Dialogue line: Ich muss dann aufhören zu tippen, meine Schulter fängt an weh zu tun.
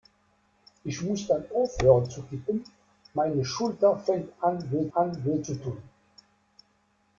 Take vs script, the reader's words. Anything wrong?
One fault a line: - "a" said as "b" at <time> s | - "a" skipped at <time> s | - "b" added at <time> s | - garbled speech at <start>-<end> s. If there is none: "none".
- "an weh" added at 4.9 s